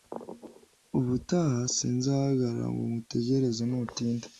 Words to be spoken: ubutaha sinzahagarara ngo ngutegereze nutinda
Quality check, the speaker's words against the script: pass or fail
pass